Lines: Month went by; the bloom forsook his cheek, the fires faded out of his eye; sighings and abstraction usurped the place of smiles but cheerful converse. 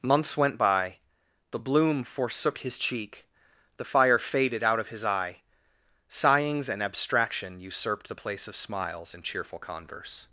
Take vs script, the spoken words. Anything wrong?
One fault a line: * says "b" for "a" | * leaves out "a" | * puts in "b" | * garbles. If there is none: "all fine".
* says "Months" for "Month"
* says "fire" for "fires"
* says "and" for "but"